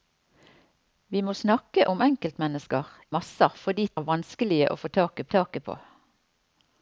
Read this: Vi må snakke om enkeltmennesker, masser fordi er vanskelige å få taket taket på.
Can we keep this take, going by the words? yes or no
yes